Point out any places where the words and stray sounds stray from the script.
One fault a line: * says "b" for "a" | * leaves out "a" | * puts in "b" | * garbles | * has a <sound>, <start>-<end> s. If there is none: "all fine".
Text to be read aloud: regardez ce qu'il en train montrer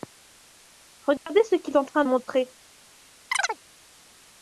* has a dropout, 1.2-1.3 s
* has a chirp, 3.3-3.6 s